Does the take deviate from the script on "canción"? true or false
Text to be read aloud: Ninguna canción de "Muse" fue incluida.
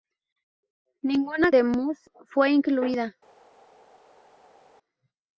true